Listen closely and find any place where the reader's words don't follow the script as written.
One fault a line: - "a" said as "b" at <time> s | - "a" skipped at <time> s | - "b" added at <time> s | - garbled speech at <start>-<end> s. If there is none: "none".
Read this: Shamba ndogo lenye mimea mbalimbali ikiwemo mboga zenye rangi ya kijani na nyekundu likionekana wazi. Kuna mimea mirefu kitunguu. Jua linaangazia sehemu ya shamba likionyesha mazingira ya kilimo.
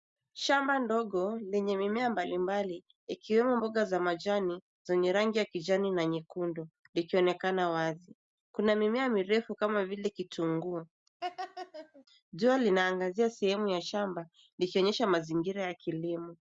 - "za majani" added at 3.8 s
- "kama vile" added at 9.5 s